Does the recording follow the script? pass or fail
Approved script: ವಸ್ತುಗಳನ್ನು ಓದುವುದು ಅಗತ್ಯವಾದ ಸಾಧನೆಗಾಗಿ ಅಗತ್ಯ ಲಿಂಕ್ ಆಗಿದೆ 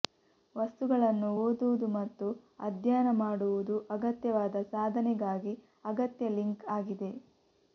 fail